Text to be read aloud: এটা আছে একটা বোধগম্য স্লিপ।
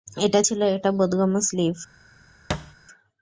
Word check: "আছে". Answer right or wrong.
wrong